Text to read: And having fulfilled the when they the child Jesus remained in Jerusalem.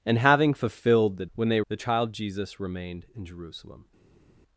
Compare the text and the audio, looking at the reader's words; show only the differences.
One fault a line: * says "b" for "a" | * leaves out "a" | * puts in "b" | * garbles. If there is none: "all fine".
all fine